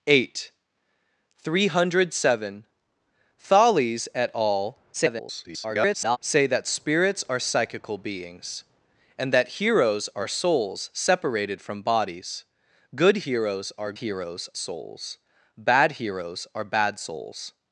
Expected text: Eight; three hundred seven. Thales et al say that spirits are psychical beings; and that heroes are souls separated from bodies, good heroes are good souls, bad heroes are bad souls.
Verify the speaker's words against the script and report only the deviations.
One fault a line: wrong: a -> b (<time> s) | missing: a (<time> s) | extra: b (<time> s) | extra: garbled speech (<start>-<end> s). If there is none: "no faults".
extra: garbled speech (4.9-6.2 s)
wrong: good -> heroes (13.9 s)